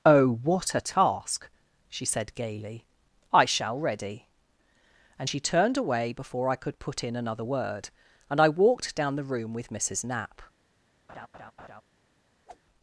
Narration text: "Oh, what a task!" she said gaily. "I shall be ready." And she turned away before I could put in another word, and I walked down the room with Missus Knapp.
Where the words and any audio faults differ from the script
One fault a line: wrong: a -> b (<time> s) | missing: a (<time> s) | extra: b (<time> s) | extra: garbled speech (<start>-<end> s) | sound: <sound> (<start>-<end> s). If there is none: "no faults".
missing: be (3.8 s)
sound: laugh (11.1-11.8 s)
sound: whoosh (12.5-12.6 s)